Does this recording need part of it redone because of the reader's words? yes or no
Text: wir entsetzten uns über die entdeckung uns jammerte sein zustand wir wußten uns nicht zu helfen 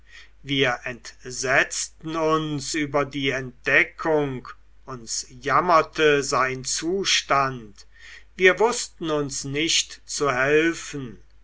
no